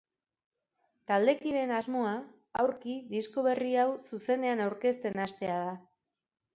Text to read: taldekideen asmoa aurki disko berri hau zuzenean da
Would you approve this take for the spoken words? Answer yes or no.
no